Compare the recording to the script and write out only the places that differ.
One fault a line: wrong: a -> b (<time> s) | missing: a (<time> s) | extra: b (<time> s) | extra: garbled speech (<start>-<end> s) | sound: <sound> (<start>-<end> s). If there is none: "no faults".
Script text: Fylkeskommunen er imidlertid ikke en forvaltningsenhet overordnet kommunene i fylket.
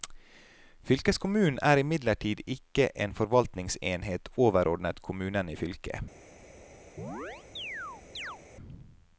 sound: chirp (7.0-8.4 s)